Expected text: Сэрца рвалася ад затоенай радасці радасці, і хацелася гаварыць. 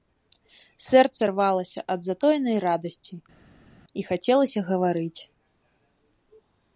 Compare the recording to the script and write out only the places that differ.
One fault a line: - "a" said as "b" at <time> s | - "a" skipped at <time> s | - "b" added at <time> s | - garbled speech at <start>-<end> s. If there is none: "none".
- "радасці" skipped at 3.2 s